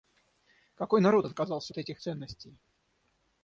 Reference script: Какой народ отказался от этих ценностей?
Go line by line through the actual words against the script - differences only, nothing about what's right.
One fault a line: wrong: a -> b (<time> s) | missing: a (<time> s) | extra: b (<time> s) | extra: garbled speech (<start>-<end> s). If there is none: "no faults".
no faults